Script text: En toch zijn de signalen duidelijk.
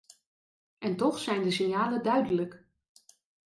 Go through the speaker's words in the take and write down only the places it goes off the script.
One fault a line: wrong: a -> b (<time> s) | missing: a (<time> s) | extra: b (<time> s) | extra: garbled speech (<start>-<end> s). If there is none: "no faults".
no faults